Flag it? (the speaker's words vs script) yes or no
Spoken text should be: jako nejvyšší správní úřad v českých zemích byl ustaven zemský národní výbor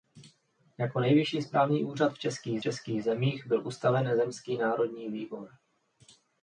yes